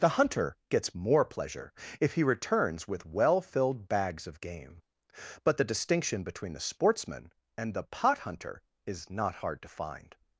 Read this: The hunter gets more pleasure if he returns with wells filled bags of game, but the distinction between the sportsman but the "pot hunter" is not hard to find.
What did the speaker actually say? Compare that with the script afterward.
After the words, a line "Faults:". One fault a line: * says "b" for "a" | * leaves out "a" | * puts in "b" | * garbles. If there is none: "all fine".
The hunter gets more pleasure if he returns with well filled bags of game, but the distinction between the sportsman and the "pot hunter" is not hard to find.
Faults:
* says "well" for "wells"
* says "and" for "but"